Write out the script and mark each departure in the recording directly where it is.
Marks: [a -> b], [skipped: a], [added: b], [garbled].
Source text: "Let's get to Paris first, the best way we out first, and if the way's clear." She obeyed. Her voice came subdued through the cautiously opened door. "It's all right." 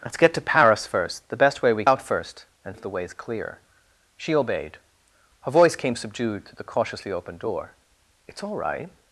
"Let's get to Paris first, the best way we out first, and if the way's clear." She obeyed. Her voice came subdued through the cautiously opened door. "It's all right."